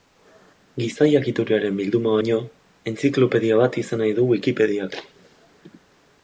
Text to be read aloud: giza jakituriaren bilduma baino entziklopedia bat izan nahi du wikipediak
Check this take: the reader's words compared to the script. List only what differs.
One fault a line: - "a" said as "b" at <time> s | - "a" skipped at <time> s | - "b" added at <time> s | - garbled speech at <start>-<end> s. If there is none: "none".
none